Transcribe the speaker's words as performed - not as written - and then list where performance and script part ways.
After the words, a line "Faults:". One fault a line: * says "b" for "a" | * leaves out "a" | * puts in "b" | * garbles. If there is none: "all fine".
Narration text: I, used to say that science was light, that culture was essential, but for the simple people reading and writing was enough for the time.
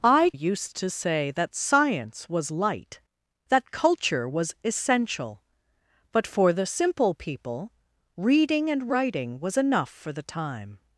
I, used to say that science was light, that culture was essential, but for the simple people reading and writing was enough for the time.
Faults:
all fine